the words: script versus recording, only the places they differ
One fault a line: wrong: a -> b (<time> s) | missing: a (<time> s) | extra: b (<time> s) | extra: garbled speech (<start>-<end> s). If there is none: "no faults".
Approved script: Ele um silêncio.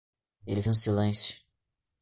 no faults